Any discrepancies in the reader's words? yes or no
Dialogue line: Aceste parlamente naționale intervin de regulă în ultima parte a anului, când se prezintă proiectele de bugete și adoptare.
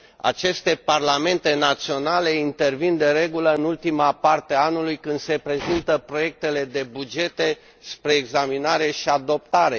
yes